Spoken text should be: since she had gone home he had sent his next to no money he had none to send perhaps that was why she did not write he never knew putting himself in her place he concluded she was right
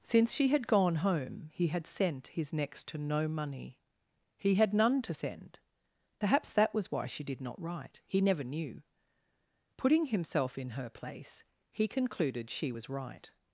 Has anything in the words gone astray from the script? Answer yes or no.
no